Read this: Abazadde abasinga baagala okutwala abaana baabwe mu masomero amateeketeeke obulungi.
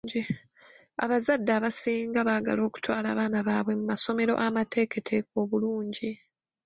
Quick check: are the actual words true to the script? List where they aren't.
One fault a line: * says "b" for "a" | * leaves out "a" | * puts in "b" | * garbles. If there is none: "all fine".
all fine